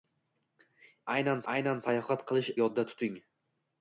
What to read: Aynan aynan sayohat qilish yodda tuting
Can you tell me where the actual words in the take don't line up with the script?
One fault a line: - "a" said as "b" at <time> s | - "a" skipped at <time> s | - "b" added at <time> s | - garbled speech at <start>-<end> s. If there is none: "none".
none